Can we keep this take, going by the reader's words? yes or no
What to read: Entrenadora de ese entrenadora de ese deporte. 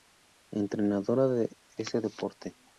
no